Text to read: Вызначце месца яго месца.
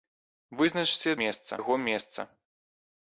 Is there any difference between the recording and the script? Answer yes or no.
no